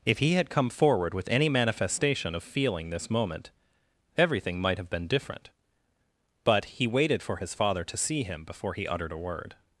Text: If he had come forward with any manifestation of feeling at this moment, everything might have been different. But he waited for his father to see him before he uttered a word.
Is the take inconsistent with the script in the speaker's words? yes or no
yes